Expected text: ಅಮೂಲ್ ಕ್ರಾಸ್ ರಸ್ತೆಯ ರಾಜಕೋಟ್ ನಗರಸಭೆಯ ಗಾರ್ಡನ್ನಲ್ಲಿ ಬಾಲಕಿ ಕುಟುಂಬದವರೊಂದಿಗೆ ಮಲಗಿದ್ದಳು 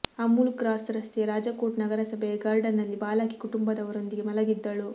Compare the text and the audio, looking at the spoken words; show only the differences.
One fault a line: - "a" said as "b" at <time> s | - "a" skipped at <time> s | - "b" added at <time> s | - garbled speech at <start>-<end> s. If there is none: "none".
none